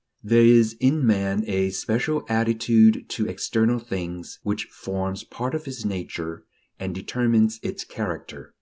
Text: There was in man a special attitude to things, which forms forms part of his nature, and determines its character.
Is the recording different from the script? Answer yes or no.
yes